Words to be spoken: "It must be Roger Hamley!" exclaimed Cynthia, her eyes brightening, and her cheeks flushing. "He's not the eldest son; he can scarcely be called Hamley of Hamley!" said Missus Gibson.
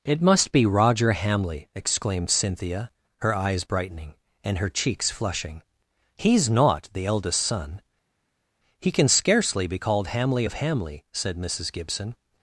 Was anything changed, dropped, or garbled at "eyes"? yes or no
no